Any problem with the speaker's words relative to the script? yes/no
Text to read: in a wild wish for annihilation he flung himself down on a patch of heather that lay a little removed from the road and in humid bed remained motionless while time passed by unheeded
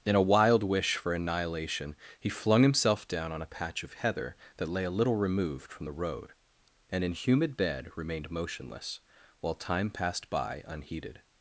no